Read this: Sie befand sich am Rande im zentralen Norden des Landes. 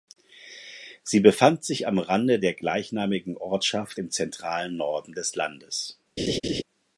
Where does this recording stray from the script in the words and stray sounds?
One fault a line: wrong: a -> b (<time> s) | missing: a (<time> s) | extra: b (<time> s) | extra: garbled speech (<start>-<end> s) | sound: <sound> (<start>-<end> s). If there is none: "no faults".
extra: der gleichnamigen Ortschaft (2.4 s)
sound: laugh (6.2-6.6 s)